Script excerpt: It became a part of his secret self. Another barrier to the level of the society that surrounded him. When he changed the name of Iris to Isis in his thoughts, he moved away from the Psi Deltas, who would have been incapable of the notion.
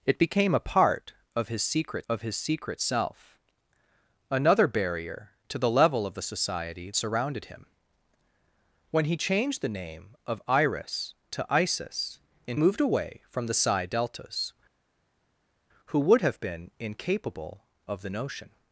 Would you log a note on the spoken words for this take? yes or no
yes